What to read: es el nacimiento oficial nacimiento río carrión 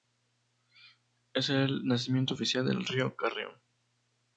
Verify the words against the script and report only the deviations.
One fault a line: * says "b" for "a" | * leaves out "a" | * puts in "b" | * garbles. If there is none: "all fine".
* says "del" for "nacimiento"